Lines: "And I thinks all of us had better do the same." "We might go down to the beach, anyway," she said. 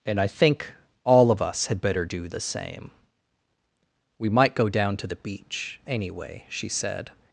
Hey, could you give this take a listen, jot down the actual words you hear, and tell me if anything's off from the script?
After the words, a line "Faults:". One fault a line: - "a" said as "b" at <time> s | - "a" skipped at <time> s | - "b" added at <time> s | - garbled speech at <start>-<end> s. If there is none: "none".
"And I think all of us had better do the same." "We might go down to the beach, anyway," she said.
Faults:
- "thinks" said as "think" at 0.3 s